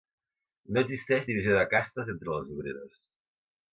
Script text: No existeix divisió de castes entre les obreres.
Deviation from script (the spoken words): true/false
false